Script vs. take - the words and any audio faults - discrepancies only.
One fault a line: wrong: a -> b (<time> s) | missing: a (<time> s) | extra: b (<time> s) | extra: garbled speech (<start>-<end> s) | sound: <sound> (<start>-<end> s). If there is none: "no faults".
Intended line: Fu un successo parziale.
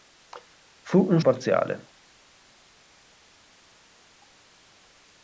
missing: successo (1.2 s)